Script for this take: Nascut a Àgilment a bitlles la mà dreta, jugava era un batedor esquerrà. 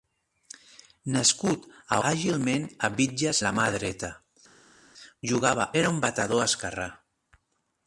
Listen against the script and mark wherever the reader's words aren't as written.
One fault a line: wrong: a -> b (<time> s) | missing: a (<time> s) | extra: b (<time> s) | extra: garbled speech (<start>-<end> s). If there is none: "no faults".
no faults